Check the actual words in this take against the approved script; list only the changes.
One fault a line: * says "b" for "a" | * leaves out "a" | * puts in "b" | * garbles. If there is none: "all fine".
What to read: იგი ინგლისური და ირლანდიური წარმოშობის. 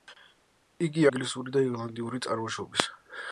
all fine